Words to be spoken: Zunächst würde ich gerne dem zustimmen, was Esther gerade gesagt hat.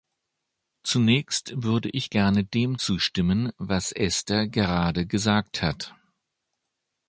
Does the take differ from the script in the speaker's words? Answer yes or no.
no